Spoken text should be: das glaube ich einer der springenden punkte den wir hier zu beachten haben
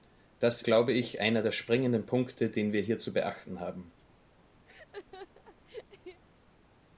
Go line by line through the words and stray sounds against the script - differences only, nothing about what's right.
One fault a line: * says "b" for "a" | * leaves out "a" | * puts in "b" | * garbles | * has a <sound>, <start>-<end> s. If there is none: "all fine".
* has a laugh, 4.7-6.2 s